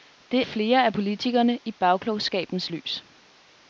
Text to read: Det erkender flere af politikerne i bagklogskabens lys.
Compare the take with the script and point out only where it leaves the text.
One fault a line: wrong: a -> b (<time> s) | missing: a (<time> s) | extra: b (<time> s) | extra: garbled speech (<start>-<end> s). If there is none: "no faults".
missing: erkender (0.5 s)